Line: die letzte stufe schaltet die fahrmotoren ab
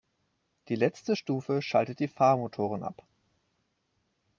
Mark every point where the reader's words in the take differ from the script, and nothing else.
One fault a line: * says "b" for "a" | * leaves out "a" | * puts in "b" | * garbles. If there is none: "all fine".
all fine